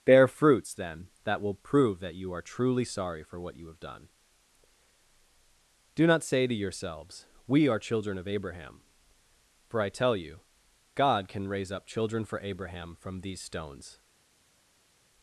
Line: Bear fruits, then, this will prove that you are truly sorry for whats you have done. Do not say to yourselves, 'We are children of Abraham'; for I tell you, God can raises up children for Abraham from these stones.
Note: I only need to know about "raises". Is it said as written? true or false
false